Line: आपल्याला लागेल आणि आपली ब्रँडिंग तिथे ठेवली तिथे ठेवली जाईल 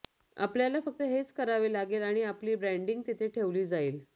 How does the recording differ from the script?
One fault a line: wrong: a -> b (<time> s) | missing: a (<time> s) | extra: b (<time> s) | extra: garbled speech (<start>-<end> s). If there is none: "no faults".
extra: फक्त हेच करावे (0.8 s)
missing: तिथे ठेवली (3.7 s)